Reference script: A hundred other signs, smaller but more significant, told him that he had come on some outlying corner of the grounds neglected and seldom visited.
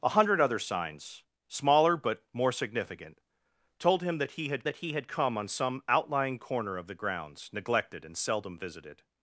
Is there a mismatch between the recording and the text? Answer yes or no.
yes